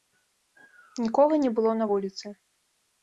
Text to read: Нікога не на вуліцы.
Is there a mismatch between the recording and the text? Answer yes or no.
yes